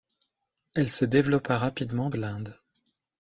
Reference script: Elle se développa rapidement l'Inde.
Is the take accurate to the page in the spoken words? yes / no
yes